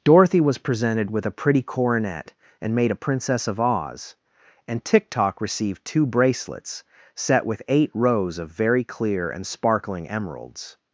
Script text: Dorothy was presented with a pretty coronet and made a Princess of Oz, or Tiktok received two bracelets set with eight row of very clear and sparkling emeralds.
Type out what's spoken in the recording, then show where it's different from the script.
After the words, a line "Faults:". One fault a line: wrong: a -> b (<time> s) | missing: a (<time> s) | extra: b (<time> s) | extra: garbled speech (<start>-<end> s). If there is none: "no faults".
Dorothy was presented with a pretty coronet and made a Princess of Oz, and Tiktok received two bracelets set with eight rows of very clear and sparkling emeralds.
Faults:
wrong: or -> and (4.7 s)
wrong: row -> rows (7.9 s)